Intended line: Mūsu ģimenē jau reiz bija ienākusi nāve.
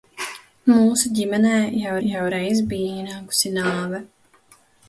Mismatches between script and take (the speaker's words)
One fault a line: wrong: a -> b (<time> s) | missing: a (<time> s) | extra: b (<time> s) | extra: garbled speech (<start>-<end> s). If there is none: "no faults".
extra: jau (2.1 s)